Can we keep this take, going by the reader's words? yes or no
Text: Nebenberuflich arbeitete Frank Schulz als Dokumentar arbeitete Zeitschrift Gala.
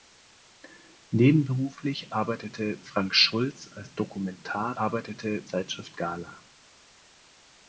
yes